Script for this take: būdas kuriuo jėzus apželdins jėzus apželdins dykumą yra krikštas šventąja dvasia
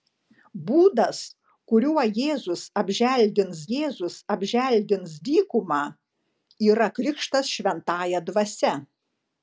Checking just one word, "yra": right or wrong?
right